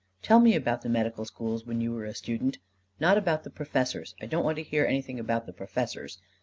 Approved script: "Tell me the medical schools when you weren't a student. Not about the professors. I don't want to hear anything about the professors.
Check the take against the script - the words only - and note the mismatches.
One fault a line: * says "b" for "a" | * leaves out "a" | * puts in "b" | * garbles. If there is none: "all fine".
* puts in "about"
* says "were" for "weren't"